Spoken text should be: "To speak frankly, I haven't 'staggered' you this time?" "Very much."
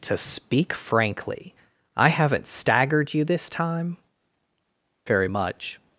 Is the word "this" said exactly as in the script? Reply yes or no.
yes